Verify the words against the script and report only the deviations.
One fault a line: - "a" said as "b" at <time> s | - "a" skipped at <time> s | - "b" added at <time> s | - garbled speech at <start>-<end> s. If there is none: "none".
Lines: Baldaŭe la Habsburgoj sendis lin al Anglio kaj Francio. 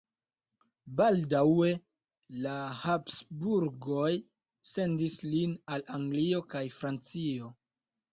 none